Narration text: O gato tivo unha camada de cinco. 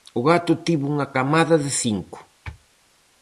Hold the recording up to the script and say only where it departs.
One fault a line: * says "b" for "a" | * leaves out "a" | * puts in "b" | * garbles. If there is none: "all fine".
all fine